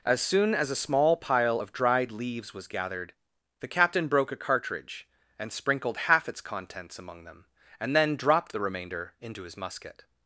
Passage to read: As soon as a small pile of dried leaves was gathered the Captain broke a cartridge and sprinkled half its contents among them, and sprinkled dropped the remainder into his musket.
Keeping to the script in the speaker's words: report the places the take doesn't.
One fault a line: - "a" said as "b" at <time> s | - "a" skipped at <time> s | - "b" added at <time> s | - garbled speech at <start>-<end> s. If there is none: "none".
- "sprinkled" said as "then" at 7.9 s